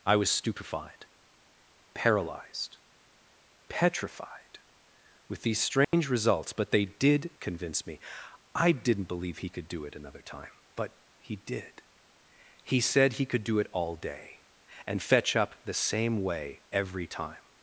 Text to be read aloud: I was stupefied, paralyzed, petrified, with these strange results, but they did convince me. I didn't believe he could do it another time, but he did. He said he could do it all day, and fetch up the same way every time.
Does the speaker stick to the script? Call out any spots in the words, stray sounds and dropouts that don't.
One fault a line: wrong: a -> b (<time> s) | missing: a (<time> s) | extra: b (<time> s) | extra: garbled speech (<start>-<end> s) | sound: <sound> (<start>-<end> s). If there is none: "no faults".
sound: dropout (5.8-5.9 s)